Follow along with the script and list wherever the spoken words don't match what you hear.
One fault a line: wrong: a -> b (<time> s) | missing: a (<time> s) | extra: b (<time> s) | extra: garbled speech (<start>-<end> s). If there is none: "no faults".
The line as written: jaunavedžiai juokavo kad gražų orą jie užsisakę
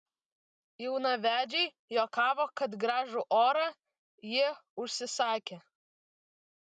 no faults